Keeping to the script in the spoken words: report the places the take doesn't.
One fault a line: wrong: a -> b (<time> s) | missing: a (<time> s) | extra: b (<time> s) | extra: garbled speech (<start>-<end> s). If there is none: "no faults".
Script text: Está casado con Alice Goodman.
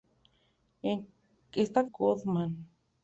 missing: casado con Alice (1.9 s)